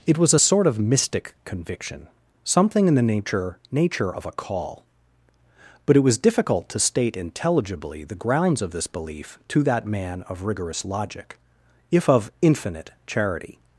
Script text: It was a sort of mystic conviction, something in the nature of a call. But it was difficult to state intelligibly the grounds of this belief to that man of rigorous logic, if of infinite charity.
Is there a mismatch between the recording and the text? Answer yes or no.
yes